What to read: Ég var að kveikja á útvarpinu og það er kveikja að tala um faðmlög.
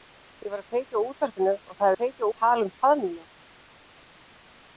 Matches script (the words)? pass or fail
pass